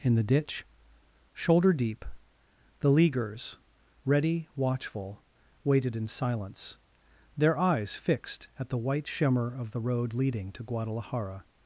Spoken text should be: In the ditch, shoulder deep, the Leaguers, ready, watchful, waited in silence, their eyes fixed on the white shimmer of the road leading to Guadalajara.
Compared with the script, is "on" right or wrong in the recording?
wrong